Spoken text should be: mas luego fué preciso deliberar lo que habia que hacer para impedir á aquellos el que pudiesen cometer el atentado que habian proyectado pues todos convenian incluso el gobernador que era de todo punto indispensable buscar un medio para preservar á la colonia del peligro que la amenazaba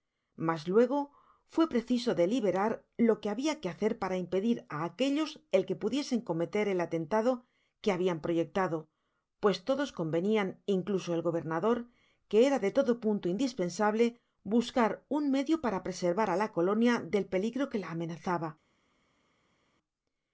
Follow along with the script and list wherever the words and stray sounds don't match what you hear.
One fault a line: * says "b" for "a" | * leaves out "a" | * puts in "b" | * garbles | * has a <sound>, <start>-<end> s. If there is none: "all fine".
all fine